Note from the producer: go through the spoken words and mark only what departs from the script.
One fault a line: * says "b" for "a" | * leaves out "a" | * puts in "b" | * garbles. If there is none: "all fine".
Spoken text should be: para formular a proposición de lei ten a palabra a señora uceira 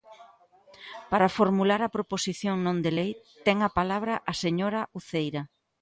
* puts in "non"